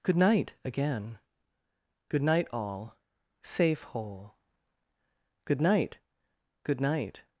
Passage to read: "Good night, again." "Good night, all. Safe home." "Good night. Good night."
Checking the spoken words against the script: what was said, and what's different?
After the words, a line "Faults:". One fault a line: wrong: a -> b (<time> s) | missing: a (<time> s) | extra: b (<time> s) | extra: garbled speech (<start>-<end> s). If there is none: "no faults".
"Good night, again." "Good night, all. Safe hole." "Good night. Good night."
Faults:
wrong: home -> hole (3.8 s)